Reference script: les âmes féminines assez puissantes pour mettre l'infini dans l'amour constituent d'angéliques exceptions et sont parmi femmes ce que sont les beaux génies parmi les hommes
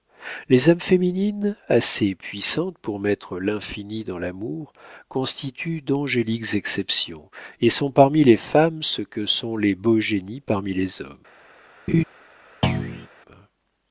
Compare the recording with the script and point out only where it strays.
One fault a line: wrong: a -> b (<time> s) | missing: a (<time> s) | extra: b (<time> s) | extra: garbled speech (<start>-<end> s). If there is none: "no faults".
extra: les (8.2 s)